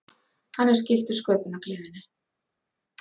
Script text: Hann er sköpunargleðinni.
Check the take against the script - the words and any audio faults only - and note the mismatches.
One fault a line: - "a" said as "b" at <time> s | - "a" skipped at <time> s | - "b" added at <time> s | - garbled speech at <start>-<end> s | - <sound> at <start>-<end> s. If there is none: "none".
- "skyldur" added at 0.8 s